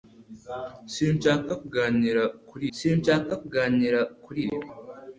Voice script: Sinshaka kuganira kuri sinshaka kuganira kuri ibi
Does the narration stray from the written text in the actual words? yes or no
no